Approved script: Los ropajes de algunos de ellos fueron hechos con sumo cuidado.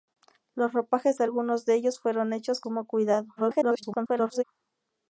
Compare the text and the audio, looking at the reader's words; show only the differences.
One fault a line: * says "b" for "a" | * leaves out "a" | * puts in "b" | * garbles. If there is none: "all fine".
* leaves out "con"
* garbles